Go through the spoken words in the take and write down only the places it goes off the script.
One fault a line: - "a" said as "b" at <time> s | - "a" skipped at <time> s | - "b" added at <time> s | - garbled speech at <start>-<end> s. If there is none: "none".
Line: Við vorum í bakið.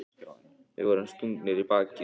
- "stungnir" added at 1.1 s